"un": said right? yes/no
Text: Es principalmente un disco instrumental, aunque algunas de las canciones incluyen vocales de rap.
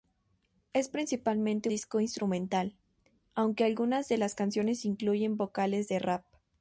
no